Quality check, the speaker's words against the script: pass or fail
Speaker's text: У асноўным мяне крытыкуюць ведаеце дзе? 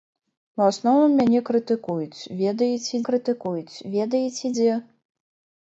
fail